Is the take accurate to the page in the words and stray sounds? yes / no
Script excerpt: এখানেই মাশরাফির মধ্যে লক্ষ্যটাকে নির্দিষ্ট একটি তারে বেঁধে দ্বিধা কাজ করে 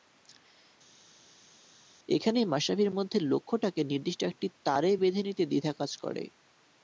no